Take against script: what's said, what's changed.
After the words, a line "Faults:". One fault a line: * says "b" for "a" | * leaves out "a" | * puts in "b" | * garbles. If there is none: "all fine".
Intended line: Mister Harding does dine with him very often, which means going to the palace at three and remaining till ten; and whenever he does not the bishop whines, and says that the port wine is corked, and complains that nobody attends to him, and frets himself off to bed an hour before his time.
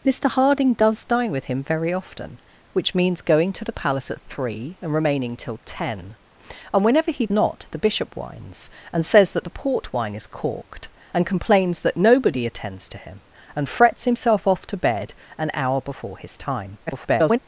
Mister Harding does dine with him very often, which means going to the palace at three and remaining till ten; and whenever he not the bishop whines, and says that the port wine is corked, and complains that nobody attends to him, and frets himself off to bed an hour before his time. [garbled]
Faults:
* leaves out "does"
* garbles